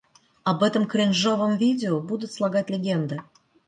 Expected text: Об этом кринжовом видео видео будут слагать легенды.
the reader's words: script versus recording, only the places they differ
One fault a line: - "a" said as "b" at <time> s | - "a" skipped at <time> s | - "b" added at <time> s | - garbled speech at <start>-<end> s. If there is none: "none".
- "видео" skipped at 2.0 s